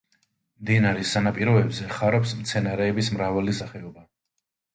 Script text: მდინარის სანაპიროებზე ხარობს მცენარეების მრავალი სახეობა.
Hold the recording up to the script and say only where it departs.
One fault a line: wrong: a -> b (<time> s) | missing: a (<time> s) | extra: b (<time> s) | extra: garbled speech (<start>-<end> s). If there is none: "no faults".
no faults